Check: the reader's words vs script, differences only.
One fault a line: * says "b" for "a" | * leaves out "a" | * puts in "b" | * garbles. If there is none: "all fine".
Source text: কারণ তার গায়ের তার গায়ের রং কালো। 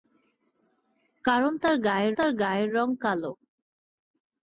all fine